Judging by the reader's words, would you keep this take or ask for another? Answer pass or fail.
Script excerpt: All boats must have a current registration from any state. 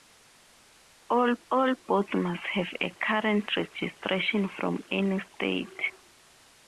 fail